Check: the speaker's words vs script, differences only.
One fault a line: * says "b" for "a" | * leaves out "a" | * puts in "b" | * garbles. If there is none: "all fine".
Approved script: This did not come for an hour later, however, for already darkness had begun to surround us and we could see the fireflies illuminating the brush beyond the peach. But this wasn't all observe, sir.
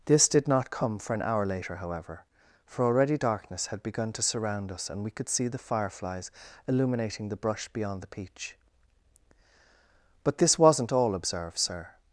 all fine